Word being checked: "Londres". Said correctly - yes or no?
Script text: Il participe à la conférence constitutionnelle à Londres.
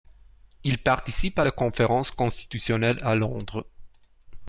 yes